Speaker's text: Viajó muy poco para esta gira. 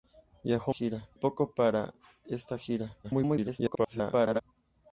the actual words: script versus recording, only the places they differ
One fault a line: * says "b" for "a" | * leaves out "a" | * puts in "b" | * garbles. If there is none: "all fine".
* says "gira" for "muy"
* garbles